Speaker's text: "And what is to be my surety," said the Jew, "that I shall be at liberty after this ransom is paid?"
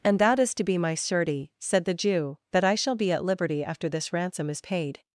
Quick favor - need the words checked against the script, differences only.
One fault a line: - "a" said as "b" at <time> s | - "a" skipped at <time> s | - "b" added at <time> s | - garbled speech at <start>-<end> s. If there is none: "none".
- "what" said as "that" at 0.2 s